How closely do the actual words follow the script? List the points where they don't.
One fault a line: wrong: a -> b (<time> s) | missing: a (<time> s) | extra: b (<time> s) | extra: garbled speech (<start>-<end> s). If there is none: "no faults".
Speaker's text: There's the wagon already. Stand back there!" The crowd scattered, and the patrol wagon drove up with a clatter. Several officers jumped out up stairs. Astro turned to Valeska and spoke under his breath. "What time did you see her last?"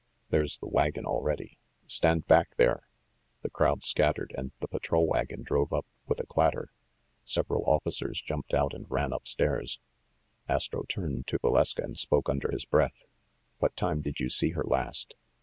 extra: and ran (8.7 s)